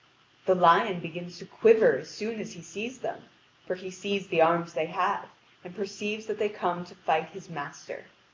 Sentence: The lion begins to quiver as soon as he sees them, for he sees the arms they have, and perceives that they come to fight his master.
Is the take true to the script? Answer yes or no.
yes